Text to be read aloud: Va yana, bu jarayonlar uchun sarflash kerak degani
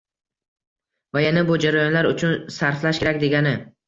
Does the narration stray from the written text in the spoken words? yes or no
no